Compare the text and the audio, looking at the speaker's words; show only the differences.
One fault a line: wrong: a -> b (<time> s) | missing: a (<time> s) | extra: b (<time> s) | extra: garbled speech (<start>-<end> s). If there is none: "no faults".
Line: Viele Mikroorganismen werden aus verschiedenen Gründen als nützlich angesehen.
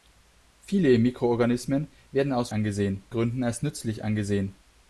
wrong: verschiedenen -> angesehen (2.5 s)